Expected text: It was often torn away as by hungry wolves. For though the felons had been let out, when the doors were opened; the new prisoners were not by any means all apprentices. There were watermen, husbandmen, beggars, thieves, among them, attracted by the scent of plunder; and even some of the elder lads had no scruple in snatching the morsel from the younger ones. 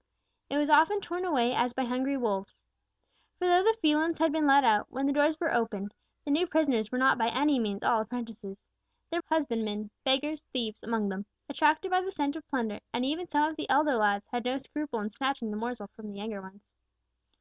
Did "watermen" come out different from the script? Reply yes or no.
yes